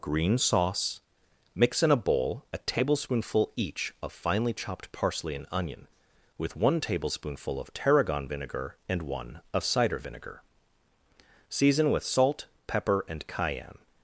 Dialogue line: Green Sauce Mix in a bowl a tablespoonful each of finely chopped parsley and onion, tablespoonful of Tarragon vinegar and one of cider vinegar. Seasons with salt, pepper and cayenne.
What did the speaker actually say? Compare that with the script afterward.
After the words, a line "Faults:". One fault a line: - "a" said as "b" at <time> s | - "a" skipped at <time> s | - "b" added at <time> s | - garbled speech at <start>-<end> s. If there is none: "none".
Green Sauce Mix in a bowl a tablespoonful each of finely chopped parsley and onion, with one tablespoonful of Tarragon vinegar and one of cider vinegar. Season with salt, pepper and cayenne.
Faults:
- "with one" added at 6.4 s
- "Seasons" said as "Season" at 11.5 s